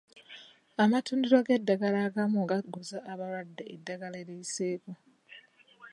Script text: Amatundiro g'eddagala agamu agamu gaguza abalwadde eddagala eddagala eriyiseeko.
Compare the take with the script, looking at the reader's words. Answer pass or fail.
fail